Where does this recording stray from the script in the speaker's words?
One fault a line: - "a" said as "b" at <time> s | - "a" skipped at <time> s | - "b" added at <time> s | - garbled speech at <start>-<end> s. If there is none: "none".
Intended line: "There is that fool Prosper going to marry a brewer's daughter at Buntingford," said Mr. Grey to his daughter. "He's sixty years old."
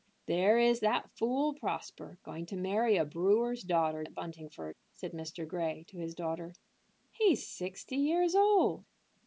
none